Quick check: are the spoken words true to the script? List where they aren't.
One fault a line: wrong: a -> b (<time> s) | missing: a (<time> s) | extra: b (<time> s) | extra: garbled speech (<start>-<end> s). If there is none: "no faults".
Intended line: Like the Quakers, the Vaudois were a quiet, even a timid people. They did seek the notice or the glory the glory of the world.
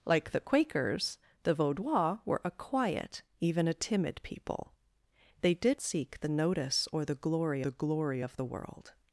no faults